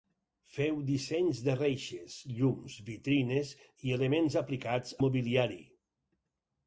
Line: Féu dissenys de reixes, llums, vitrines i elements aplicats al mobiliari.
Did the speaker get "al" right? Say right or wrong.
wrong